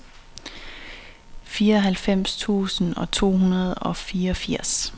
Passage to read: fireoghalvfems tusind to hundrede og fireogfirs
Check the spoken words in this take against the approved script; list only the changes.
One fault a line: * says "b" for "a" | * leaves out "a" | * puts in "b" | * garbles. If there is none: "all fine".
all fine